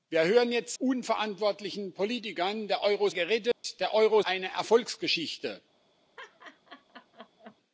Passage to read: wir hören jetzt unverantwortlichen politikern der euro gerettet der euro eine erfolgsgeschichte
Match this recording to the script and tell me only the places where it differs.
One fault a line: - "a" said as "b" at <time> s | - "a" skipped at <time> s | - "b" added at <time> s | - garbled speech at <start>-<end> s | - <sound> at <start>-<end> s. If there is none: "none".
- dropout at 3.5-3.6 s
- laugh at 6.2-7.6 s